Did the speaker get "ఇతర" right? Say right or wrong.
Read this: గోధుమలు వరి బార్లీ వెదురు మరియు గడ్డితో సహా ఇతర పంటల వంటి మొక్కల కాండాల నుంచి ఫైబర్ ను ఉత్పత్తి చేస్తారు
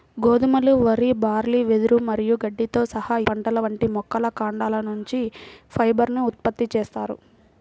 wrong